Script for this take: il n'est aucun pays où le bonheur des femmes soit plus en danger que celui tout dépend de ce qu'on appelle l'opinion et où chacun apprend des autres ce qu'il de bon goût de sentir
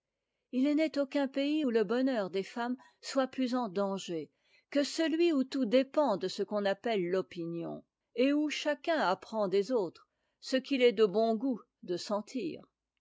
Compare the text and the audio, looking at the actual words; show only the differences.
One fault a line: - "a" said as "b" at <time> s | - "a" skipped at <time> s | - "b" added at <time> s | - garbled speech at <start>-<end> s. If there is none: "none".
- "où" added at 5.3 s
- "est" added at 10.8 s